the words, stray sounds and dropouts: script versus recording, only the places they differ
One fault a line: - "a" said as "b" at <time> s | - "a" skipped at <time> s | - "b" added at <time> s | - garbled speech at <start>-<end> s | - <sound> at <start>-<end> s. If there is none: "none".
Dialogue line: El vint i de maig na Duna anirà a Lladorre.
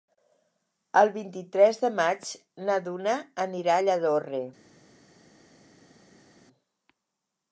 - "tres" added at 1.6 s